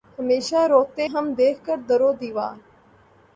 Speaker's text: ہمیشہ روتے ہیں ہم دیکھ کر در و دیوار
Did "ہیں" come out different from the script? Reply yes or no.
yes